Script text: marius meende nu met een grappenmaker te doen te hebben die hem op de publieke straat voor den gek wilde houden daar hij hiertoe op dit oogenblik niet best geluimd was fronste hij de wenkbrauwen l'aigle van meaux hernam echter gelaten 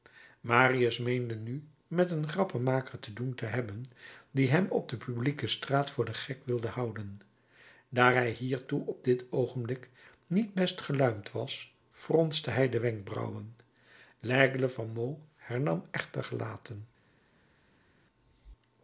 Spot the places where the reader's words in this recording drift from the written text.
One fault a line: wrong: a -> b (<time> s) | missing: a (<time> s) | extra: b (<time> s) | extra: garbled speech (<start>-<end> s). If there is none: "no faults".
no faults